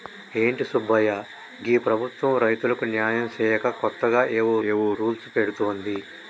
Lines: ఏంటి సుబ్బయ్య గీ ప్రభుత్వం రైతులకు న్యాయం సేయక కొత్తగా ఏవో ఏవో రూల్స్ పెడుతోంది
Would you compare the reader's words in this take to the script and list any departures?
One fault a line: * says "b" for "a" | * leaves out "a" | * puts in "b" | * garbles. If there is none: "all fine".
all fine